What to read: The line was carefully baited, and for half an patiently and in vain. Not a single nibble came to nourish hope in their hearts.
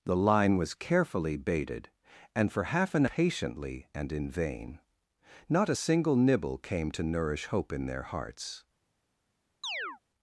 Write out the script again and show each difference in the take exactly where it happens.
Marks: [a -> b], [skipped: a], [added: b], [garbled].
The line was carefully baited, and for half an patiently and in vain. Not a single nibble came to nourish hope in their hearts.